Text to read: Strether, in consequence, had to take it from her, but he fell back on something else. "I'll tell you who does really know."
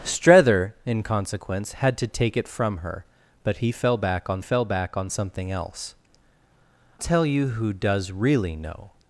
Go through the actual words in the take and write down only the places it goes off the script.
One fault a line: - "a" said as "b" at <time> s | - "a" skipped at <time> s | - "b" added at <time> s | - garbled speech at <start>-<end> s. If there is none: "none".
- "fell back on" added at 4.4 s
- "I'll" skipped at 5.9 s